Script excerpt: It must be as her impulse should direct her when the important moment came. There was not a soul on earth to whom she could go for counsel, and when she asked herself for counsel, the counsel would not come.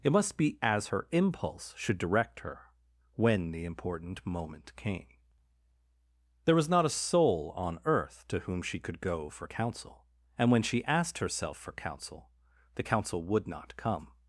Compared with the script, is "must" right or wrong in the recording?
right